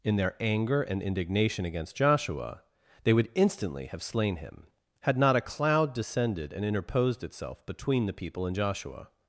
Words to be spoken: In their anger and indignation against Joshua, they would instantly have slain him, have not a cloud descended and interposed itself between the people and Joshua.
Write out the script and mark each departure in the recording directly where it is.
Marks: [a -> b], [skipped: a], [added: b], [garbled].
In their anger and indignation against Joshua, they would instantly have slain him, [have -> had] not a cloud descended and interposed itself between the people and Joshua.